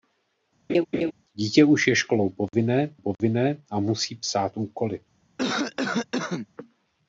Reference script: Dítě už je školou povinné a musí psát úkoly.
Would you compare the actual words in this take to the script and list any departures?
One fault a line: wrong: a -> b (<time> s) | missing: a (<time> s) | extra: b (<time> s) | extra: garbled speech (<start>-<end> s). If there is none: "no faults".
extra: povinné (3.0 s)